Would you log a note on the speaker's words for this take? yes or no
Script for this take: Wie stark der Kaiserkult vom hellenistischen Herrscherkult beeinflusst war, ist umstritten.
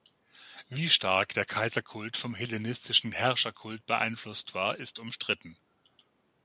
no